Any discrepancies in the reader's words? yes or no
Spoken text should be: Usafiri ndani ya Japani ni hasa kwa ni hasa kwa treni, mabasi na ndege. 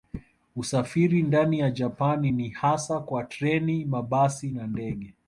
yes